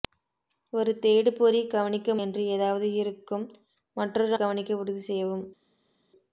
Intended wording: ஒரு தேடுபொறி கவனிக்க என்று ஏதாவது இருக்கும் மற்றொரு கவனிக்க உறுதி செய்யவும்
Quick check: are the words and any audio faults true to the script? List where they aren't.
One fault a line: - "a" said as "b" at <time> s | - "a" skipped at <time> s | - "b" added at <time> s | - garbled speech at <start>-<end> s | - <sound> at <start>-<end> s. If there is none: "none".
none